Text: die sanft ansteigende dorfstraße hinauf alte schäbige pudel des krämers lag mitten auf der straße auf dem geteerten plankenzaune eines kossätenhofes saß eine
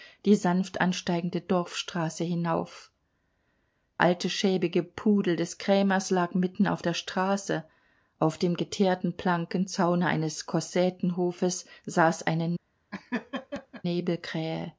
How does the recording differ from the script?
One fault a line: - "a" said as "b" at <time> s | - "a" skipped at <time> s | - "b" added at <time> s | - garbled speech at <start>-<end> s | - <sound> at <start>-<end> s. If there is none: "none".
- laugh at 12.9-13.8 s